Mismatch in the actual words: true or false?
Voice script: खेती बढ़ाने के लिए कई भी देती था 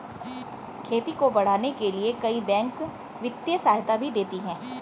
true